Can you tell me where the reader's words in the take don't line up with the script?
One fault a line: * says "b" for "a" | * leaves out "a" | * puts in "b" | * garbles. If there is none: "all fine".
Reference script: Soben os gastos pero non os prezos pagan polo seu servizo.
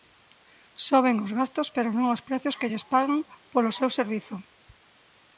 * puts in "que lles"